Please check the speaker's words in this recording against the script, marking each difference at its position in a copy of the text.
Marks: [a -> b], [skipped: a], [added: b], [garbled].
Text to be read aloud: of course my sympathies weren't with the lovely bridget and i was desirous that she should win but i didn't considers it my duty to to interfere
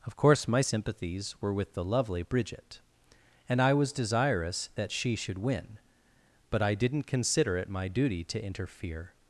of course my sympathies [weren't -> were] with the lovely bridget and i was desirous that she should win but i didn't [considers -> consider] it my duty to [skipped: to] interfere